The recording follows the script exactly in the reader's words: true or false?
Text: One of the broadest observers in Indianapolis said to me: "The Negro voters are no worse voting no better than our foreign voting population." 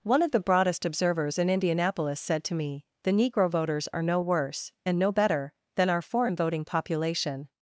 false